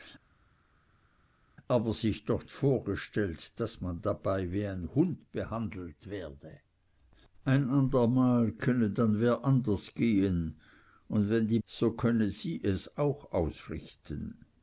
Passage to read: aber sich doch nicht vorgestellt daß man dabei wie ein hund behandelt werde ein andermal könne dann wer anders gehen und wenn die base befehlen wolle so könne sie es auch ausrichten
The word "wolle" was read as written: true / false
false